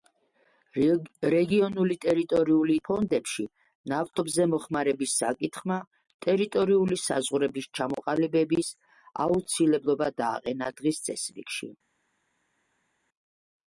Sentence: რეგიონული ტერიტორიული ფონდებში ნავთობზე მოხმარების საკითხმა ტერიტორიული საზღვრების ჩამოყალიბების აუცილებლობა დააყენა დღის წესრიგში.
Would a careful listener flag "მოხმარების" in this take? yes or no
no